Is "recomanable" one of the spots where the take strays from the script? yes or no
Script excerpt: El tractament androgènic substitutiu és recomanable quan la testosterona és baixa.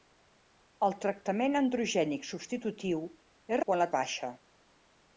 yes